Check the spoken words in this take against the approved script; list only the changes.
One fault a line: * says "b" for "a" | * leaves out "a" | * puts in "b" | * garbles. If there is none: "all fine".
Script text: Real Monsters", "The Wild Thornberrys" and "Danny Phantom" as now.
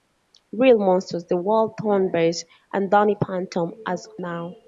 all fine